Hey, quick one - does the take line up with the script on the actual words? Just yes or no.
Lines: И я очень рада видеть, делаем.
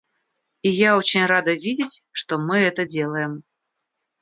no